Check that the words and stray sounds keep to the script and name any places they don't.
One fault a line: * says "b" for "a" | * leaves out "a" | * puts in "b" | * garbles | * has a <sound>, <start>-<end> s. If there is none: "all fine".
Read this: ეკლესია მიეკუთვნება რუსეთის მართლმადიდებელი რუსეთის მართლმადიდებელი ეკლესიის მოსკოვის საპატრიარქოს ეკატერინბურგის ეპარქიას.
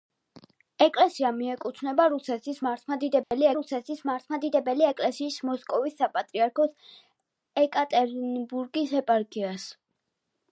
* has a dropout, 3.2-3.3 s